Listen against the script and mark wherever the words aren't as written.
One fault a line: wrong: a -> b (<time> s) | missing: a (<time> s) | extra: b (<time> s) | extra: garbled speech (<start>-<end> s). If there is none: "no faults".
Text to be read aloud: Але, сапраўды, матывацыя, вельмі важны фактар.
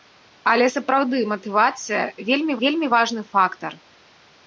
extra: вельмі (2.6 s)